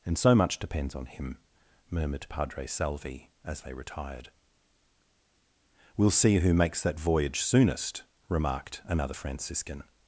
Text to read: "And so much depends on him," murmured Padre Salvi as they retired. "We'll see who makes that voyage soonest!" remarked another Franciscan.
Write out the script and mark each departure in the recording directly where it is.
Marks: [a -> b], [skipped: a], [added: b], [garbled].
"And so much depends on him," murmured Padre Salvi as they retired. "We'll see who makes that voyage soonest!" remarked another Franciscan.